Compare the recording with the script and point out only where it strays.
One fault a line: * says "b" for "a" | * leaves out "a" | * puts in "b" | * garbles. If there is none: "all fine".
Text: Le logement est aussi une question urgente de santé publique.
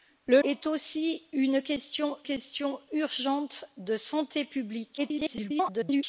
* leaves out "logement"
* puts in "question"
* garbles